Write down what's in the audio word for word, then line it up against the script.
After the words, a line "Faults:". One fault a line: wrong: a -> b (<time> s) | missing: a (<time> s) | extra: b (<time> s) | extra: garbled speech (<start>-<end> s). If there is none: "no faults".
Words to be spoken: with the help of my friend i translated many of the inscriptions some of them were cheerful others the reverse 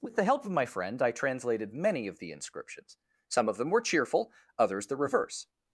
with the help of my friend i translated many of the inscriptions some of them were cheerful others the reverse
Faults:
no faults